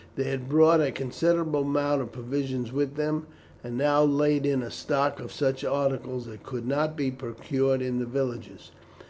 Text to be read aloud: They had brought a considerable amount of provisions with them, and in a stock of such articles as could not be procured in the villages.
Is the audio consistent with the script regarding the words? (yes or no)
no